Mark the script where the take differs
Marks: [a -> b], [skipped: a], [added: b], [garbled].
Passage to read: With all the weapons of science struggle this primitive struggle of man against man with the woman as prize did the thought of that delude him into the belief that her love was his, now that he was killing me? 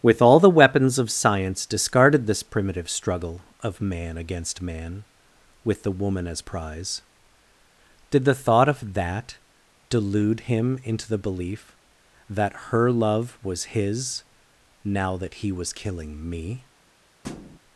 With all the weapons of science [struggle -> discarded] this primitive struggle of man against man with the woman as prize did the thought of that delude him into the belief that her love was his, now that he was killing me?